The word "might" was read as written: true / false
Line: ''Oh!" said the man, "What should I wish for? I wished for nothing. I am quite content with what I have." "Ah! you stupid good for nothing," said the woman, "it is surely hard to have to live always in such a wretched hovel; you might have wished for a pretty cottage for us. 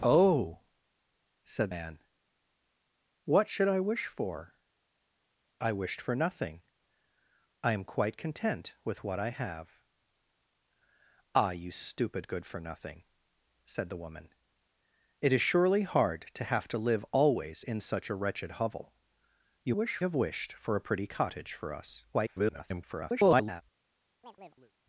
false